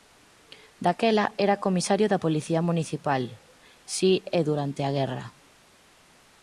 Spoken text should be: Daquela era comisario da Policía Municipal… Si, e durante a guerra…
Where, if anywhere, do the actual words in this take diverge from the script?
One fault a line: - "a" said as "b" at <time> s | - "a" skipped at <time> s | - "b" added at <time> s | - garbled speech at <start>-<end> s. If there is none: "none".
none